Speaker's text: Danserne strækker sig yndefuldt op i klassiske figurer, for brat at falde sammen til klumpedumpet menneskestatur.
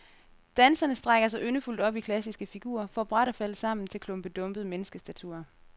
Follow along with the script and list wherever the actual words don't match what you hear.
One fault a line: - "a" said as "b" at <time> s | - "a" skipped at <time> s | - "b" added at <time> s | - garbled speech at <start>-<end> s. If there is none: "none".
none